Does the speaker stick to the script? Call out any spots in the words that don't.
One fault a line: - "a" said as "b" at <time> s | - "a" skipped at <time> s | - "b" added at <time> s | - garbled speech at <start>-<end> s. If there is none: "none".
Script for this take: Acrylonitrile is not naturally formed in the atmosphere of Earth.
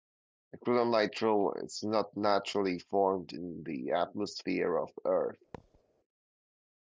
none